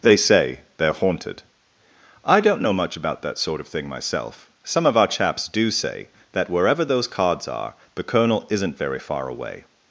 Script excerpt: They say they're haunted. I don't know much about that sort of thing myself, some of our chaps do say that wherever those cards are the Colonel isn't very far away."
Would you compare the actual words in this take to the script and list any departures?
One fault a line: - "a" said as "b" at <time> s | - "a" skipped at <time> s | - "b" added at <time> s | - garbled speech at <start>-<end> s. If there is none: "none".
none